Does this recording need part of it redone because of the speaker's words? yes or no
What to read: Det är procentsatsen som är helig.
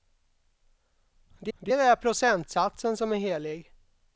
yes